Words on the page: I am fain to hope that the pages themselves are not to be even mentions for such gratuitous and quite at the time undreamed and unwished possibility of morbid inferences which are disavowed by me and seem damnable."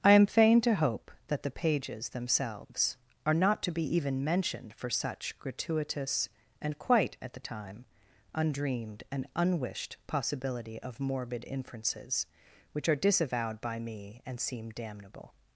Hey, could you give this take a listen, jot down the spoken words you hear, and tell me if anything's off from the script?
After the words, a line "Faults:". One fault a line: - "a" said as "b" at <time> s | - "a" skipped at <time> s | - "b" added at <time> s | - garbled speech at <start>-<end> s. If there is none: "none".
I am fain to hope that the pages themselves are not to be even mentioned for such gratuitous and quite at the time undreamed and unwished possibility of morbid inferences which are disavowed by me and seem damnable."
Faults:
- "mentions" said as "mentioned" at 4.2 s